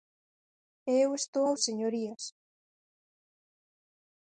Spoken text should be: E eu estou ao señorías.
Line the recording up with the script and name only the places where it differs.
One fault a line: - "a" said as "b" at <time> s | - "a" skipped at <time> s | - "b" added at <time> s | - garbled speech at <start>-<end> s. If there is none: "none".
none